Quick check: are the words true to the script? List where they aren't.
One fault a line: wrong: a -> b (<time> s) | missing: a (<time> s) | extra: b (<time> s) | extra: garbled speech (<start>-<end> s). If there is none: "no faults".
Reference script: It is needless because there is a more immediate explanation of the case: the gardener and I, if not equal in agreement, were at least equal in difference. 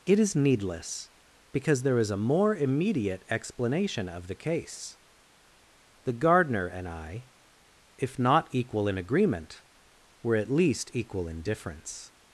no faults